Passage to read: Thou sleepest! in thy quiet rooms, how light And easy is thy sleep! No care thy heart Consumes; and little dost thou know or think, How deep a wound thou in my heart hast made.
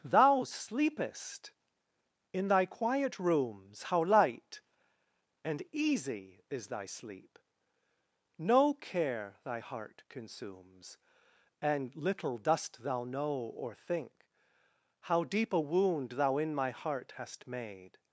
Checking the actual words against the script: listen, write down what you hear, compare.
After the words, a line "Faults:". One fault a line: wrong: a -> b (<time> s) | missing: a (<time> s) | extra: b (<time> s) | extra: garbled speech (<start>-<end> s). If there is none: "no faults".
Thou sleepest! in thy quiet rooms, how light And easy is thy sleep! No care thy heart Consumes; and little dost thou know or think, How deep a wound thou in my heart hast made.
Faults:
no faults